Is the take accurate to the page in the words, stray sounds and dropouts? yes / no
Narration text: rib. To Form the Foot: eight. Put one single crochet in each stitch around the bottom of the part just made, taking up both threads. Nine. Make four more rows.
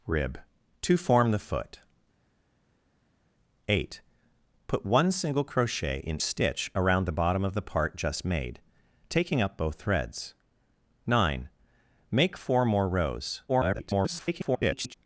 no